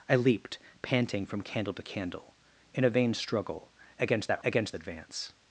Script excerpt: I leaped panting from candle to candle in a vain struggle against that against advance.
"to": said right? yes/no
yes